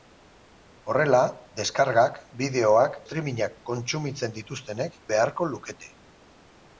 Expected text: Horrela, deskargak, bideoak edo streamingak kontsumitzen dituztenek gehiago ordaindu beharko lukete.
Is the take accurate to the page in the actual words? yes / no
no